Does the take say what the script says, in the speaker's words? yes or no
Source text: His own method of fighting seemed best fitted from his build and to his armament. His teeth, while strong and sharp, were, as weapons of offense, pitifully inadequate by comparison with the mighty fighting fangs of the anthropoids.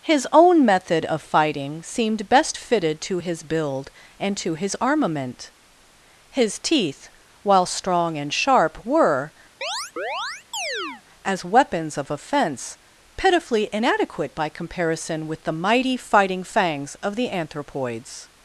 no